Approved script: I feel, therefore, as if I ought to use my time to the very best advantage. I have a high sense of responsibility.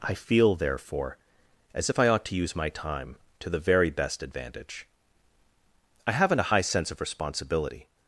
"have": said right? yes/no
no